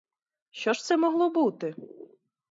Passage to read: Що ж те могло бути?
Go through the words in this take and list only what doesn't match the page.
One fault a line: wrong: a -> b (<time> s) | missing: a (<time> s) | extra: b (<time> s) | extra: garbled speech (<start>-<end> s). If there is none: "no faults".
wrong: те -> це (0.8 s)